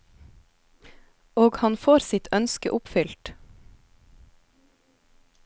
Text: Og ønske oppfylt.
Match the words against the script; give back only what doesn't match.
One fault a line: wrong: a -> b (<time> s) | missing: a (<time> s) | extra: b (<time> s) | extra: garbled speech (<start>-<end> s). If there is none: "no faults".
extra: han får sitt (1.6 s)